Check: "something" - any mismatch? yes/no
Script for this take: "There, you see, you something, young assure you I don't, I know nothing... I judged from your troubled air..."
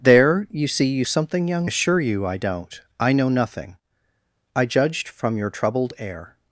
no